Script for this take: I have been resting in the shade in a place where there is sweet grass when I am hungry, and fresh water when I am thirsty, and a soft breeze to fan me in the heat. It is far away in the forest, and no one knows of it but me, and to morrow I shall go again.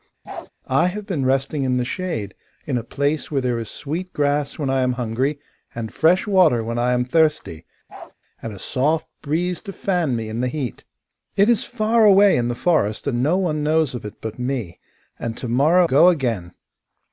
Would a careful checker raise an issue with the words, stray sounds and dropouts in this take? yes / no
yes